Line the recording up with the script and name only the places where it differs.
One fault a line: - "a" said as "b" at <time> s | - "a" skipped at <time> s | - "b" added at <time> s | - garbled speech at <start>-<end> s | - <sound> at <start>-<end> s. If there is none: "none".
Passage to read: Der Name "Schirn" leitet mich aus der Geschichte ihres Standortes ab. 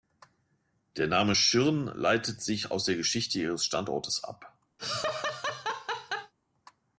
- "mich" said as "sich" at 2.4 s
- laugh at 4.8-6.3 s